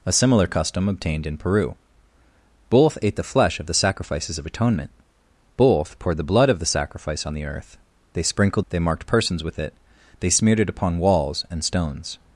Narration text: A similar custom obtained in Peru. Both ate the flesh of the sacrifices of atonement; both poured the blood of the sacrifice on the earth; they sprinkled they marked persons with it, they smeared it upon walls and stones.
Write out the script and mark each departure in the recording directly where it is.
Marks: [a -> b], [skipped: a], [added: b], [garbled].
A similar custom obtained in Peru. Both ate the flesh of the sacrifices of atonement; both poured the blood of the sacrifice on the earth; they sprinkled they marked persons with it, they smeared it upon walls and stones.